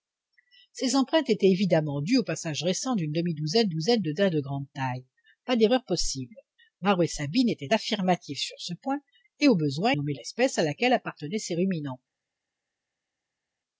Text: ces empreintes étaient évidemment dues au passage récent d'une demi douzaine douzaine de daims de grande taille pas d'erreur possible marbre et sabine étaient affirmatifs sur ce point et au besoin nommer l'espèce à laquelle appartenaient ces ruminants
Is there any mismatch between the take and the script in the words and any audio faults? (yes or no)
no